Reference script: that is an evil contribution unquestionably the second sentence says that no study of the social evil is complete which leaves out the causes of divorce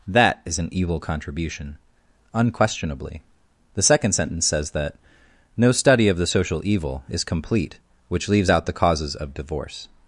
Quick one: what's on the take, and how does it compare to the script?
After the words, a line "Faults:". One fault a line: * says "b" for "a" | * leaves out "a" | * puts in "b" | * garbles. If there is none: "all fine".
that is an evil contribution unquestionably the second sentence says that no study of the social evil is complete which leaves out the causes of divorce
Faults:
all fine